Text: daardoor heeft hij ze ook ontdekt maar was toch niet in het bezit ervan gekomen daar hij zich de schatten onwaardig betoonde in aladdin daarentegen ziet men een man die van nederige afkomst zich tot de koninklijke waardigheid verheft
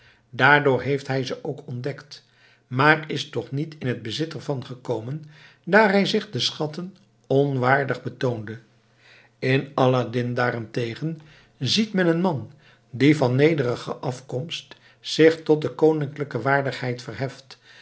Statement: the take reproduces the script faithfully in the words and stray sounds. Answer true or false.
false